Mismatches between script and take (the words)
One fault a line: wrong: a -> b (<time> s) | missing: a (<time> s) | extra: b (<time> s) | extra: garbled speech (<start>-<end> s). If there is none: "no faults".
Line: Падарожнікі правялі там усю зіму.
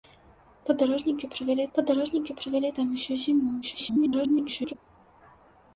extra: падарожнікі правялі (1.8 s)
extra: garbled speech (3.6-4.8 s)